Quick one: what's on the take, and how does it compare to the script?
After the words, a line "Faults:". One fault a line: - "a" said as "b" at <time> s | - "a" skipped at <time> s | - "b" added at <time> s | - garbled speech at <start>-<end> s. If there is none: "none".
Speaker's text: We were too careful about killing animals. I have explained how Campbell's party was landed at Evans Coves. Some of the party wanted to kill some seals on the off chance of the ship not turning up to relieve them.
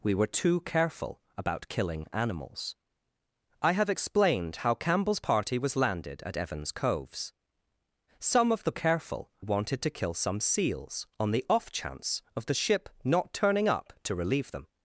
We were too careful about killing animals. I have explained how Campbell's party was landed at Evans Coves. Some of the careful wanted to kill some seals on the off chance of the ship not turning up to relieve them.
Faults:
- "party" said as "careful" at 8.7 s